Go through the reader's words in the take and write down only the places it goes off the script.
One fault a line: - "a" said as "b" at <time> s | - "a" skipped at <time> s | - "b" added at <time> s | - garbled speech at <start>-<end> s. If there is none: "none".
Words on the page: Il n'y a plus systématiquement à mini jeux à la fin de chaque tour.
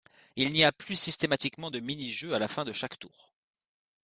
- "à" said as "de" at 1.7 s